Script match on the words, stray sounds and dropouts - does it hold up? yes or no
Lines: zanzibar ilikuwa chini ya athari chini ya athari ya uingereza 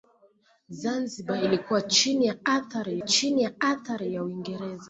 yes